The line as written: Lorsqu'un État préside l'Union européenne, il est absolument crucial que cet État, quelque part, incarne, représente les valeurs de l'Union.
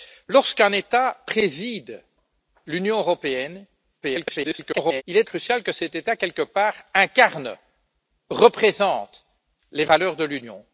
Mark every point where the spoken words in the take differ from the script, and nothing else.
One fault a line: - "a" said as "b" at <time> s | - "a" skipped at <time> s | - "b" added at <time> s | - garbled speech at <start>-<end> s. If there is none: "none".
- garbled speech at 4.0-5.0 s
- "absolument" skipped at 5.3 s